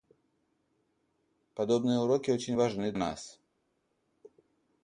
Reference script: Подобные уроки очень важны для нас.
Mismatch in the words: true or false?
true